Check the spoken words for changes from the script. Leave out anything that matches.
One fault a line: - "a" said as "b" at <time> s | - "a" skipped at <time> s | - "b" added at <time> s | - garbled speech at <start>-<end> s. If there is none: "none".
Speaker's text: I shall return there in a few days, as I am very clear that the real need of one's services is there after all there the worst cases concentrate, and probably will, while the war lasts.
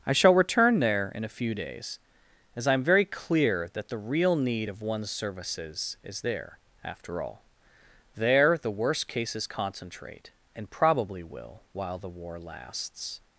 none